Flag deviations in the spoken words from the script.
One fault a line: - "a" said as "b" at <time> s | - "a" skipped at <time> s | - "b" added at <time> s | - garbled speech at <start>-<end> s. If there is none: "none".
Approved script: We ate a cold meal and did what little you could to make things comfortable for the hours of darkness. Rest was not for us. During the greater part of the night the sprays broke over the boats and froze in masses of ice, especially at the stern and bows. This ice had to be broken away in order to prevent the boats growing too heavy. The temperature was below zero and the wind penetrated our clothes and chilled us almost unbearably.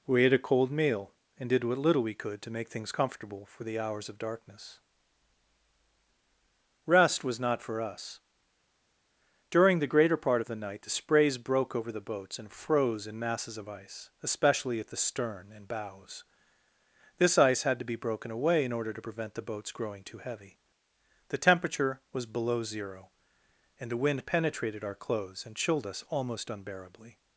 - "you" said as "we" at 2.0 s